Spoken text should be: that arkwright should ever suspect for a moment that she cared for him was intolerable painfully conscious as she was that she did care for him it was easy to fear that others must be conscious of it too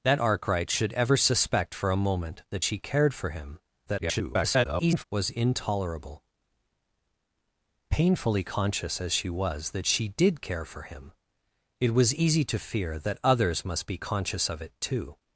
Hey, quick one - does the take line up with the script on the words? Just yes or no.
no